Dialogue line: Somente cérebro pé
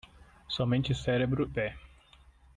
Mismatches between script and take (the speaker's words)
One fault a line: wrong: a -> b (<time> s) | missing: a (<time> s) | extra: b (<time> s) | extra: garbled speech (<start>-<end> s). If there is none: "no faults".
no faults